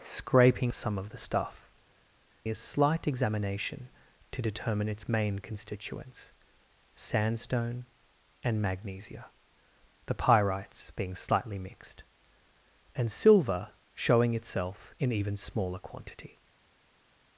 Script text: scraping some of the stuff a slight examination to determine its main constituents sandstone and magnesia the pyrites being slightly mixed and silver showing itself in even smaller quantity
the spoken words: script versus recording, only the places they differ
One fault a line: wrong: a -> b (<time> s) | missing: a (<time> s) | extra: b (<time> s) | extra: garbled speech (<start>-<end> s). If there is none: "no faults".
no faults